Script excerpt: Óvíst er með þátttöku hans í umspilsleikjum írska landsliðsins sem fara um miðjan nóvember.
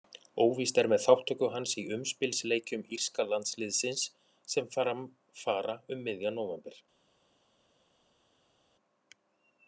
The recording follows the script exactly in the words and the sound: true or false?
false